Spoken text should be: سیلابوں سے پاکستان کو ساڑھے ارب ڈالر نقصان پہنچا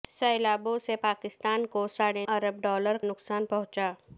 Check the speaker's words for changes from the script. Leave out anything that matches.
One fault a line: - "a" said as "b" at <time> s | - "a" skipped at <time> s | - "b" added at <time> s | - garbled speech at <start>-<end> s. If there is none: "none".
none